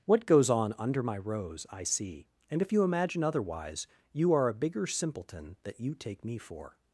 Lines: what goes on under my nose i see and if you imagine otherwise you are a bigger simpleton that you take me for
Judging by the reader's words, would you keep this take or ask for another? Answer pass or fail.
fail